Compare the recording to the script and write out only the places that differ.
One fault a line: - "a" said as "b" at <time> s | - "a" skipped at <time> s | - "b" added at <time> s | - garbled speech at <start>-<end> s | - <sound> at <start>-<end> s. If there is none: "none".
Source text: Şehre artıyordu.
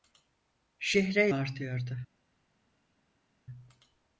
none